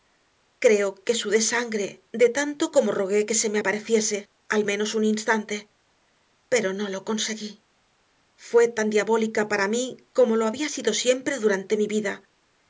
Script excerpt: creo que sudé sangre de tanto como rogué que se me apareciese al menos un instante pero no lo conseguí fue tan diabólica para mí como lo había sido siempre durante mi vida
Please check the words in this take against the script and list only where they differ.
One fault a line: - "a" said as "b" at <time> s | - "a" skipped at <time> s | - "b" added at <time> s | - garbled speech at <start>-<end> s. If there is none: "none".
none